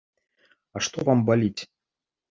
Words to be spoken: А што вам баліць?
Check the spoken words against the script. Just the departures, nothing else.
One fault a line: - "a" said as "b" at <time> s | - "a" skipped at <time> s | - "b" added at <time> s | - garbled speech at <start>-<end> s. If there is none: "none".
none